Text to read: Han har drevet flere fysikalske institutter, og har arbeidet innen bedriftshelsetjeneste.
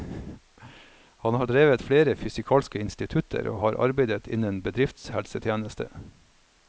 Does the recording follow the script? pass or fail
pass